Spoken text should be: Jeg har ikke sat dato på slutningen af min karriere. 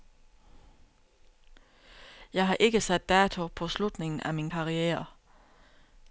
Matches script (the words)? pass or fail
pass